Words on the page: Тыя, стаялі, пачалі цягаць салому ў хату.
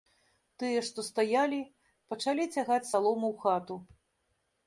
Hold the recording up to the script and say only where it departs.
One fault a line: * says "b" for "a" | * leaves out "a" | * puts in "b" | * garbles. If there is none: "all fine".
* puts in "што"